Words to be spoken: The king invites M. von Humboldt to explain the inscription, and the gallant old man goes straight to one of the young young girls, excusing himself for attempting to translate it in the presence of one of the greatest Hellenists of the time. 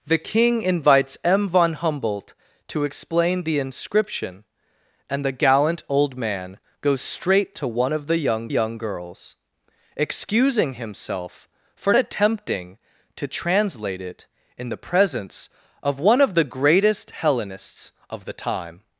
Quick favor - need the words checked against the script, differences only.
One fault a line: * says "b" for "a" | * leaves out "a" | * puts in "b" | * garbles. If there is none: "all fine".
all fine